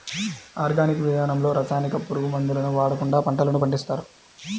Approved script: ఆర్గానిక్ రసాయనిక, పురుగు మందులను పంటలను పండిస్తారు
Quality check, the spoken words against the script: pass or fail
fail